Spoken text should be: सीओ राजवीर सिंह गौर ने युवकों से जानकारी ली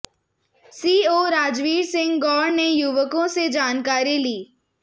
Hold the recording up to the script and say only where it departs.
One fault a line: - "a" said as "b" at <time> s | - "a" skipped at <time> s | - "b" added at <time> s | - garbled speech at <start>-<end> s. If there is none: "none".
none